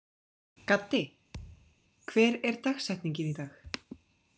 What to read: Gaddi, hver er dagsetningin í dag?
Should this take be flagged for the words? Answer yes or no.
no